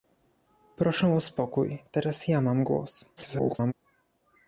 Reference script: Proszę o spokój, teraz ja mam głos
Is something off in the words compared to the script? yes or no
yes